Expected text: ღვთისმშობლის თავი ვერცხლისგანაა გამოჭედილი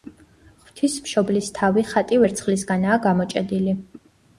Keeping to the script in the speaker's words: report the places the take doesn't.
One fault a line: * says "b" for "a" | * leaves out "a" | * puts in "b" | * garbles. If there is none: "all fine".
* puts in "ხატი"